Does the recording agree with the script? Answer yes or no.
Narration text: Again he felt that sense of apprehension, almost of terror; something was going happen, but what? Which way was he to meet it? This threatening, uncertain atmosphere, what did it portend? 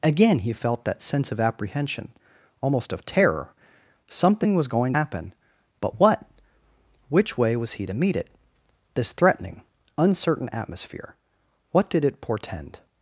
yes